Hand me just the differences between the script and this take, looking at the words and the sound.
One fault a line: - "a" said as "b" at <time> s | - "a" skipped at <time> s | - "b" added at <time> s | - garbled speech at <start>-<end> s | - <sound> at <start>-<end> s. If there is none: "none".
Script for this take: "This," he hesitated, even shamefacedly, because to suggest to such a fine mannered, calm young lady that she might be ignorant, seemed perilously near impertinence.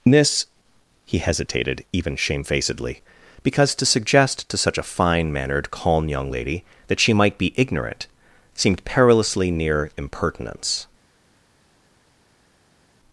none